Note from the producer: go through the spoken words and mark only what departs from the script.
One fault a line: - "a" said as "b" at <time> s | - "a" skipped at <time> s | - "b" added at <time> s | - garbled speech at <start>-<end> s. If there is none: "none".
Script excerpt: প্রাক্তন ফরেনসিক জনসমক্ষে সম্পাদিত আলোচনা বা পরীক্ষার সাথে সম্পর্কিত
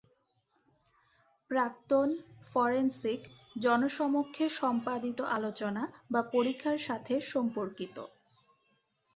none